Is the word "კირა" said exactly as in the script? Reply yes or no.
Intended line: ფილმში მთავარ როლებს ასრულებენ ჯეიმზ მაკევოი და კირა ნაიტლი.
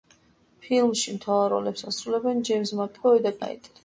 no